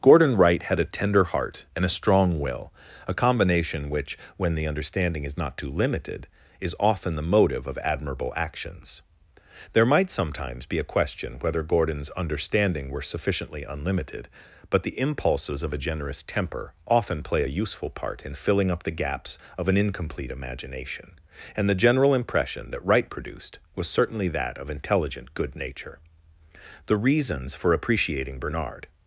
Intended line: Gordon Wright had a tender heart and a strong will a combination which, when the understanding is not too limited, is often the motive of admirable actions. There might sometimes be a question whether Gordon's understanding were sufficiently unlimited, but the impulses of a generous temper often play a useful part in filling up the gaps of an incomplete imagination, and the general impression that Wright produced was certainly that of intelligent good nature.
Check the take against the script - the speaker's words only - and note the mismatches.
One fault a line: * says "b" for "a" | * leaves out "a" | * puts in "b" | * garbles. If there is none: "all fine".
* puts in "The reasons for appreciating Bernard"